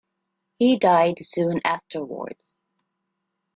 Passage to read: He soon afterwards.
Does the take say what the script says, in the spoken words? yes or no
no